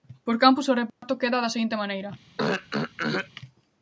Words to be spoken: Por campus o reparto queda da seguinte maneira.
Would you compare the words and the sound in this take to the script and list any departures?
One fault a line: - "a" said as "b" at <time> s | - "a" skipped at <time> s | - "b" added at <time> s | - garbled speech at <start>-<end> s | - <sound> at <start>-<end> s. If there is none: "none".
- dropout at 0.9-1.0 s
- throat clearing at 2.4-3.3 s